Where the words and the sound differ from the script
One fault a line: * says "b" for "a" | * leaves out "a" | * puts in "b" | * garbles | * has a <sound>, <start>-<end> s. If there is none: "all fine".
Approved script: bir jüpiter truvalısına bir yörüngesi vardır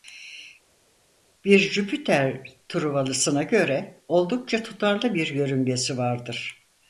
* puts in "göre oldukça tutarlı"